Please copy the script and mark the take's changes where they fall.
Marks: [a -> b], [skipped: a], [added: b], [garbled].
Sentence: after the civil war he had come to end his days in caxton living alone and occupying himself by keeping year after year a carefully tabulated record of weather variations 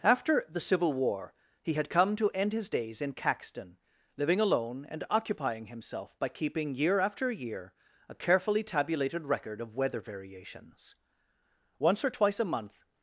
after the civil war he had come to end his days in caxton living alone and occupying himself by keeping year after year a carefully tabulated record of weather variations [added: once or twice a month]